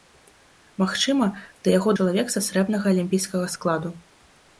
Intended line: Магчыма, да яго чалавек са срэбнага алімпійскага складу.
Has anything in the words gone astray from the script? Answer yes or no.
no